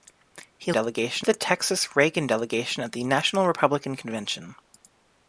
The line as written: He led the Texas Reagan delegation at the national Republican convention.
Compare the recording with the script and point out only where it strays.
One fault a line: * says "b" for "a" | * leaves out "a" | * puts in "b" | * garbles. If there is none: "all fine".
* says "delegation" for "led"